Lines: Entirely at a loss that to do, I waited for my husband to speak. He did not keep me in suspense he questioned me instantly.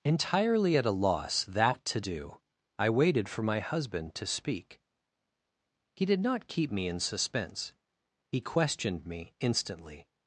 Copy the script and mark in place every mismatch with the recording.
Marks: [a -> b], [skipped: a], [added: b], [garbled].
Entirely at a loss that to do, I waited for my husband to speak. He did not keep me in suspense he questioned me instantly.